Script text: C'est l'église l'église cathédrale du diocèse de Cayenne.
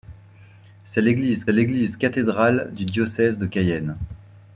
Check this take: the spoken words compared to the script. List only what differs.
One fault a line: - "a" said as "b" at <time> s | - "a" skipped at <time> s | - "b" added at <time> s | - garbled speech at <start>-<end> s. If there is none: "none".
none